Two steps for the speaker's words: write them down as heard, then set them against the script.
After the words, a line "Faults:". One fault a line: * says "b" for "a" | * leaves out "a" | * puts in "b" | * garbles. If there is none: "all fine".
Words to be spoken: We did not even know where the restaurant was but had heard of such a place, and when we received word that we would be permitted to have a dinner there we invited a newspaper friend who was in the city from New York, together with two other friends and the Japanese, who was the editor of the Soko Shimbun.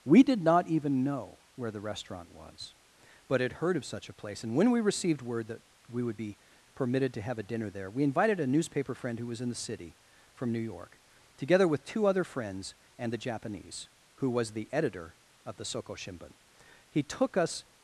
We did not even know where the restaurant was but had heard of such a place, and when we received word that we would be permitted to have a dinner there we invited a newspaper friend who was in the city from New York, together with two other friends and the Japanese, who was the editor of the Soko Shimbun. He took us
Faults:
* puts in "He took us"